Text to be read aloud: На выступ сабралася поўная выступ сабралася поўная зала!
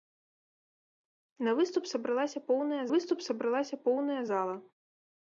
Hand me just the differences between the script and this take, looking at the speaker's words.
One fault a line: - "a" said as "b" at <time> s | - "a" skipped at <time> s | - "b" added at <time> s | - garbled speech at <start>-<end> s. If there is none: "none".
none